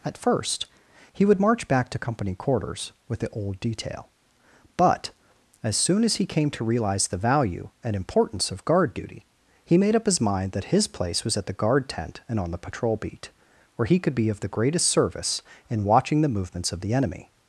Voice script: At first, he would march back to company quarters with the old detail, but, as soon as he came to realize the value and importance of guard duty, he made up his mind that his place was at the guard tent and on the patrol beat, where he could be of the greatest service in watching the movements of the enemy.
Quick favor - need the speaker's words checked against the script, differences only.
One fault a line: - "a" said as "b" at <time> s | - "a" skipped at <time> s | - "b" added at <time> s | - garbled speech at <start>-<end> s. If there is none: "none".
none